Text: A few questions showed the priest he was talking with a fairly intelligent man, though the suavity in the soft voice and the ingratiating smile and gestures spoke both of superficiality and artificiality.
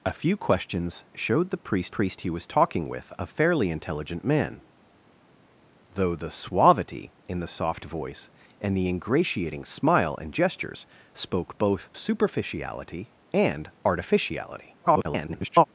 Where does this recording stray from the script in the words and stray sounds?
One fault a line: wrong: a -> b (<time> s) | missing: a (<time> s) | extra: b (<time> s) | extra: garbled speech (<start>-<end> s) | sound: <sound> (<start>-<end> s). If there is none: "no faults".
extra: priest (1.9 s)
missing: of (11.9 s)
extra: garbled speech (14.8-15.6 s)